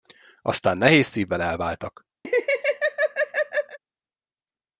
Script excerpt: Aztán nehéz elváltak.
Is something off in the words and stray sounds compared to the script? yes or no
yes